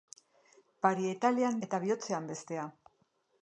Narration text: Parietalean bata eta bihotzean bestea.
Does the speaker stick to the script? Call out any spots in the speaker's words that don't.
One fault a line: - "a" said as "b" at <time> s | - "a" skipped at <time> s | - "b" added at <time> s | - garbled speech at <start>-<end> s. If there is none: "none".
- "bata" skipped at 1.6 s